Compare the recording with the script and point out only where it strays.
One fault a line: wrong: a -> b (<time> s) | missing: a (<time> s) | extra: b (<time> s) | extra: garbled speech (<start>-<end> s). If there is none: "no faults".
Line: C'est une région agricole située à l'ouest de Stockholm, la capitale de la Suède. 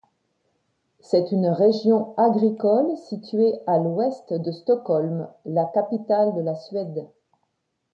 no faults